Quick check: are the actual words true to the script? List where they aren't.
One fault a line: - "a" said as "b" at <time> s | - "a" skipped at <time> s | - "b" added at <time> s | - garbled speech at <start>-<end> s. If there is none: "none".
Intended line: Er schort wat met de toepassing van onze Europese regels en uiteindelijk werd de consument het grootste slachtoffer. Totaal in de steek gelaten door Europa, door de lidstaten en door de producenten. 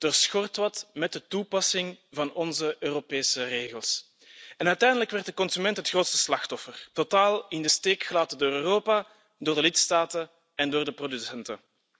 none